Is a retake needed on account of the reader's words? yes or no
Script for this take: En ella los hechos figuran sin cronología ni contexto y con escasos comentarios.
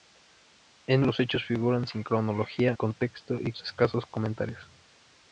yes